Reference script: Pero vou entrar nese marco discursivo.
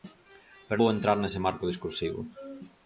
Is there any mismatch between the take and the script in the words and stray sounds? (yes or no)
no